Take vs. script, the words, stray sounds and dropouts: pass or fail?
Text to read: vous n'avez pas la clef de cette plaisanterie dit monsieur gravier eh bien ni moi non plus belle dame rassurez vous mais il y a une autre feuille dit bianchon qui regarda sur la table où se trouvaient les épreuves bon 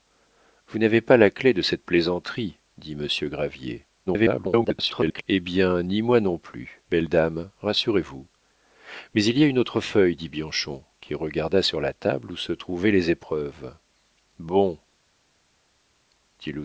fail